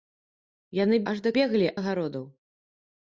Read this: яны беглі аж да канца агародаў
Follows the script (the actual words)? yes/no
no